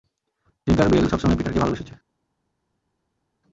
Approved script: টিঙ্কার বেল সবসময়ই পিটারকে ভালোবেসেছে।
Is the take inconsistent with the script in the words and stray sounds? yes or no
no